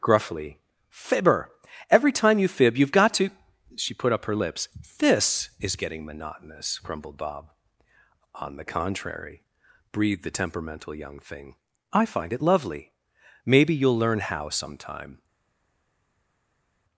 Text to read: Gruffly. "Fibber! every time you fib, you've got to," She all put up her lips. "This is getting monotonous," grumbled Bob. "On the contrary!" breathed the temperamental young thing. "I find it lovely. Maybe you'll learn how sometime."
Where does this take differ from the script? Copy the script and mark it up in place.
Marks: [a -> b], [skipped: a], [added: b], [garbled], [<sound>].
Gruffly. "Fibber! every time you fib, you've got to," She [skipped: all] put up her lips. "This is getting monotonous," grumbled Bob. "On the contrary!" breathed the temperamental young thing. "I find it lovely. Maybe you'll learn how sometime."